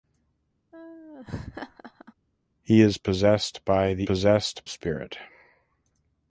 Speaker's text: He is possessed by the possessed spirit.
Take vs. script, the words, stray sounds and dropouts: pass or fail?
fail